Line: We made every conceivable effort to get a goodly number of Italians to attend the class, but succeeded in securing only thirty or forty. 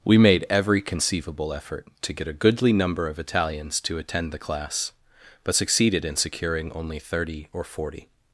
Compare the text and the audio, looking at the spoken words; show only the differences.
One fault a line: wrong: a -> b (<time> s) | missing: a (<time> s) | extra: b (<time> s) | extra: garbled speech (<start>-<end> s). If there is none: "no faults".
no faults